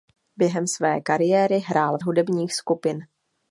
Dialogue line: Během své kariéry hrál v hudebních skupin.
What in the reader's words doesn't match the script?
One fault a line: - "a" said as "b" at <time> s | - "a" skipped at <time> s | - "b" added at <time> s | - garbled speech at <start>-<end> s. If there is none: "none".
none